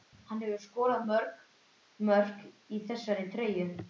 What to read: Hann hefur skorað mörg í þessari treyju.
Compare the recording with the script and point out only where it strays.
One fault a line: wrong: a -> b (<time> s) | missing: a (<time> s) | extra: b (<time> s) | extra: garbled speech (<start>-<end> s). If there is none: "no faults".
extra: mörk (2.1 s)